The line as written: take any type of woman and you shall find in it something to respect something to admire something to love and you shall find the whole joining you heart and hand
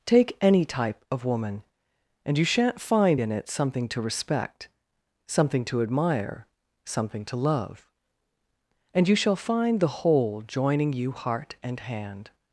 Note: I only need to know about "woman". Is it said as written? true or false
true